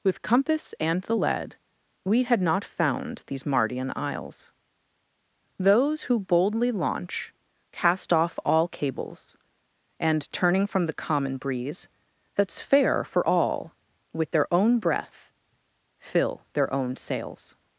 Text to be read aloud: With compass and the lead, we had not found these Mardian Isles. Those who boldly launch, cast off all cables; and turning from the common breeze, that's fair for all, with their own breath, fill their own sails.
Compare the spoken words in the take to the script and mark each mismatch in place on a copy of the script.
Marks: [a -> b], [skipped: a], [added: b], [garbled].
With compass and the lead, we had not found these Mardian Isles. Those who boldly launch, cast off all cables; and turning from the common breeze, that's fair for all, with their own breath, fill their own sails.